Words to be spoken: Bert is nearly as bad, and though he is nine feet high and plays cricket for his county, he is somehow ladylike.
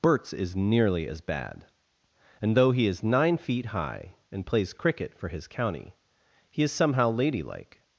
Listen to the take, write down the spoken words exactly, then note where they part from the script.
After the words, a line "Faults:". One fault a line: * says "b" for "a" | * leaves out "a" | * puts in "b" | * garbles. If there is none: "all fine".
Berts is nearly as bad, and though he is nine feet high and plays cricket for his county, he is somehow ladylike.
Faults:
* says "Berts" for "Bert"